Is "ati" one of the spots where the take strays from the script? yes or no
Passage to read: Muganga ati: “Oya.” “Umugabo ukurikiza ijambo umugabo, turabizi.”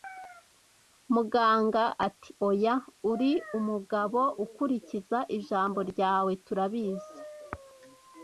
no